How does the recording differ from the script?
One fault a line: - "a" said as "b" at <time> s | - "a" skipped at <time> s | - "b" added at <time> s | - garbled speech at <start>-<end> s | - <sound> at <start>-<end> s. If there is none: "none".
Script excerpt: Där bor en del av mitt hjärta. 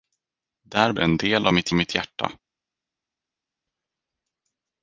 - "bor" skipped at 0.9 s
- "mitt" added at 1.7 s